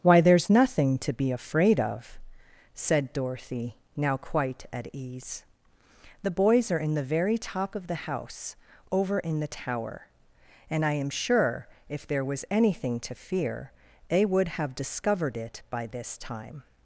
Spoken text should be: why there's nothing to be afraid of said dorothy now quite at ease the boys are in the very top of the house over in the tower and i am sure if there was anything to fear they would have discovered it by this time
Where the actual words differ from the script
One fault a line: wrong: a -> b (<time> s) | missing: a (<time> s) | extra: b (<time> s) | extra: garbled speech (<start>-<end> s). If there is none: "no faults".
no faults